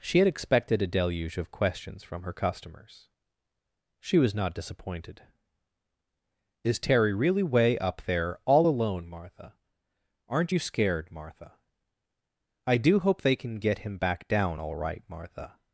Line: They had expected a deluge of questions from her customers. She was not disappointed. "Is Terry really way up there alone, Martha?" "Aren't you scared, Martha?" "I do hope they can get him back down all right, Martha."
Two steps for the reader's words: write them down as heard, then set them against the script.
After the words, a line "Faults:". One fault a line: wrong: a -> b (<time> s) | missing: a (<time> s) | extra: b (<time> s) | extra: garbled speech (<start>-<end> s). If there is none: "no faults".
She had expected a deluge of questions from her customers. She was not disappointed. "Is Terry really way up there all alone, Martha?" "Aren't you scared, Martha?" "I do hope they can get him back down all right, Martha."
Faults:
wrong: They -> She (0.0 s)
extra: all (8.4 s)